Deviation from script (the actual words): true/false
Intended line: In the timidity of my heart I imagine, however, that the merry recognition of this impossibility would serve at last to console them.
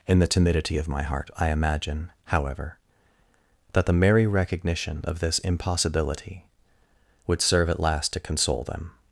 false